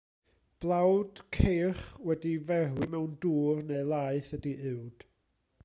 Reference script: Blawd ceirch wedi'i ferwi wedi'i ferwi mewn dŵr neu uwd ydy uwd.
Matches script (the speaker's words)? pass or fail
fail